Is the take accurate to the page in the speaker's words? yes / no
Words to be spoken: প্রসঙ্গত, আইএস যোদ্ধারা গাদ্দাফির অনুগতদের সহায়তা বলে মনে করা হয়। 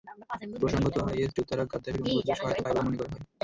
no